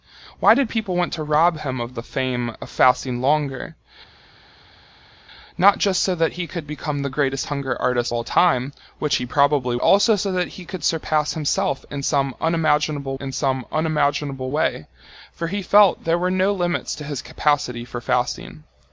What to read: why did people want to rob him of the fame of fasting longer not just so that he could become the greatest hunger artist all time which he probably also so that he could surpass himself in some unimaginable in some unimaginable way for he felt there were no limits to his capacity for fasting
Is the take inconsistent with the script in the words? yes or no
no